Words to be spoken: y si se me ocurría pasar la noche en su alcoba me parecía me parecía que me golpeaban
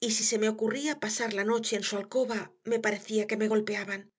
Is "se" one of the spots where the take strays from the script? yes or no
no